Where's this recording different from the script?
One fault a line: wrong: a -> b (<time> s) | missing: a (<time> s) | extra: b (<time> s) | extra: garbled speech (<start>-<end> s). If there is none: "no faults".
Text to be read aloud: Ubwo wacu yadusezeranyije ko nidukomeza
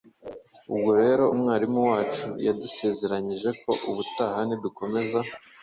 extra: rero umwarimu (1.0 s)
extra: ubutaha (3.9 s)